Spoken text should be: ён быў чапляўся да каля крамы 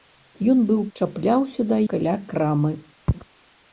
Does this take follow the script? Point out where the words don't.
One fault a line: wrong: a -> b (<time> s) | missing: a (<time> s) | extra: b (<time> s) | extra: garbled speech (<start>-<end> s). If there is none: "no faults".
no faults